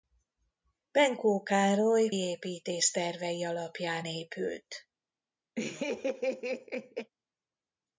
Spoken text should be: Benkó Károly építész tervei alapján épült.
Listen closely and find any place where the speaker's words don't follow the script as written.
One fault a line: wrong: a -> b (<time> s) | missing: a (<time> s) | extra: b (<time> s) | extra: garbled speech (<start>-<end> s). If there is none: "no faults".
no faults